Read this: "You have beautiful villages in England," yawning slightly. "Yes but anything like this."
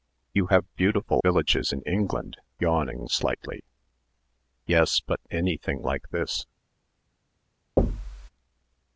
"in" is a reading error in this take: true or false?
false